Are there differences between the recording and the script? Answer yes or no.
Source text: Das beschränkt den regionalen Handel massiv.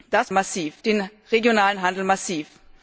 yes